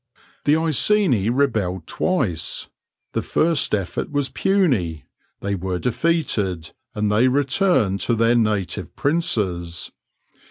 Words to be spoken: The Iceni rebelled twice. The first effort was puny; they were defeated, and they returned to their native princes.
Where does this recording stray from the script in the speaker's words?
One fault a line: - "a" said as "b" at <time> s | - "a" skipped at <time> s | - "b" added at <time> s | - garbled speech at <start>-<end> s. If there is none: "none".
none